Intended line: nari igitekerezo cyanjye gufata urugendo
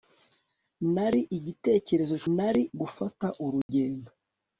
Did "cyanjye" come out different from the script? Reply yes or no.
yes